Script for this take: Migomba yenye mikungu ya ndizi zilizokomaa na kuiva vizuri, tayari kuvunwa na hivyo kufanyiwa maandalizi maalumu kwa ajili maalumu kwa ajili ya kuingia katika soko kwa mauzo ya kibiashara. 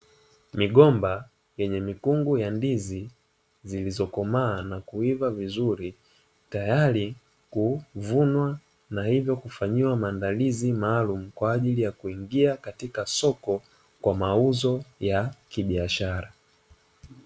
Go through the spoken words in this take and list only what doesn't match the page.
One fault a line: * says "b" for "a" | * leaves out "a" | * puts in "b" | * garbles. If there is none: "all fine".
* leaves out "maalumu kwa ajili"